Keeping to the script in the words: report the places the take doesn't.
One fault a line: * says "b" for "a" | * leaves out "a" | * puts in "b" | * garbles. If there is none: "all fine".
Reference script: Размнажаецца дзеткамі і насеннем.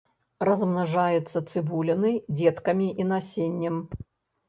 * puts in "цыбулінай"